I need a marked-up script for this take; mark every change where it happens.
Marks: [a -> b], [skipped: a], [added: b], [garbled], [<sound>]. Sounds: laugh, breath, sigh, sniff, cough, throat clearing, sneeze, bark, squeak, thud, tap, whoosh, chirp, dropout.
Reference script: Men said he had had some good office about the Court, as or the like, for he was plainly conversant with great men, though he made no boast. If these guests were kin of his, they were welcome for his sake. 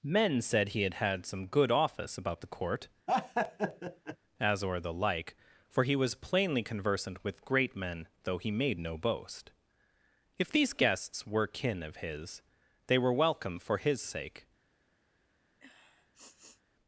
Men said he had had some good office about the Court, [laugh] as or the like, for he was plainly conversant with great men, though he made no boast. If these guests were kin of his, they were welcome for his sake. [sniff]